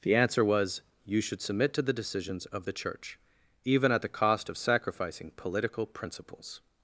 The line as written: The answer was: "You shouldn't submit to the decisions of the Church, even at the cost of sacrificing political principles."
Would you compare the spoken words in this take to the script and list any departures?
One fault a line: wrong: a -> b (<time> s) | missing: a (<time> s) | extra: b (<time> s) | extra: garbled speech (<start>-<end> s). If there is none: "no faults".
wrong: shouldn't -> should (1.2 s)